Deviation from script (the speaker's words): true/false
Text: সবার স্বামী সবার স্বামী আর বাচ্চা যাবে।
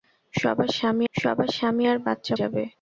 false